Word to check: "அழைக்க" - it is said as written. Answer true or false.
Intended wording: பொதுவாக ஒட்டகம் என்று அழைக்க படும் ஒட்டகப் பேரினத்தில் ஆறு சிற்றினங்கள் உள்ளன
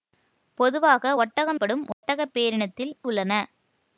false